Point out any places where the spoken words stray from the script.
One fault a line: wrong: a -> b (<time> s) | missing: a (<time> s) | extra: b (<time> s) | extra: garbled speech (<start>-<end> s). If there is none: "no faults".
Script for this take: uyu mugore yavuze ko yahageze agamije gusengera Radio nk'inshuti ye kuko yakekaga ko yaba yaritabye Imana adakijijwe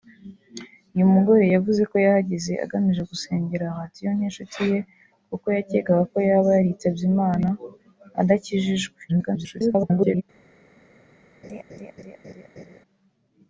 extra: garbled speech (9.1-10.2 s)